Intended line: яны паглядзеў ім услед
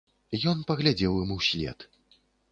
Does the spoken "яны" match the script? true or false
false